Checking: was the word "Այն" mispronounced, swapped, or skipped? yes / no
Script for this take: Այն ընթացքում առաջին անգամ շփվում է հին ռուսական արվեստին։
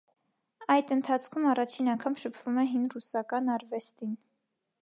yes